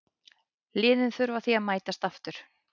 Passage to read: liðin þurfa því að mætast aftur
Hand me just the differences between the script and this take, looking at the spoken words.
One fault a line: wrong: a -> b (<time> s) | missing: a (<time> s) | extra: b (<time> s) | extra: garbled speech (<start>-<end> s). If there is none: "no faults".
no faults